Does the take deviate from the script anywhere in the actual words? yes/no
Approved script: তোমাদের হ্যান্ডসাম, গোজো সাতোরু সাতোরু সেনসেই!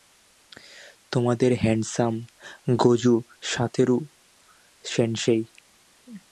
yes